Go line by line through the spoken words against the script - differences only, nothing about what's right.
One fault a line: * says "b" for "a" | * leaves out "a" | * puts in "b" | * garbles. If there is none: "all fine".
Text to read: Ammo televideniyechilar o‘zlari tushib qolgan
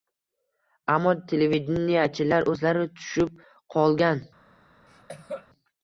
all fine